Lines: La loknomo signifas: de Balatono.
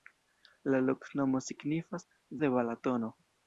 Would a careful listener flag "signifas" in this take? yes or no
no